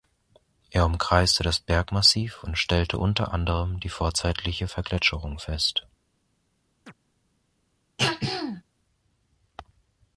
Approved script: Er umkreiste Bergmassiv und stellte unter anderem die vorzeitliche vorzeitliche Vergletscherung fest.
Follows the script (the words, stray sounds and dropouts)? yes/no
no